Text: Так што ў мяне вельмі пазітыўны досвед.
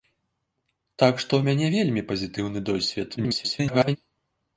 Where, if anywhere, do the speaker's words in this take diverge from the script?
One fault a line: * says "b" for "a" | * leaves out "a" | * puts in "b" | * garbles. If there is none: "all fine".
* garbles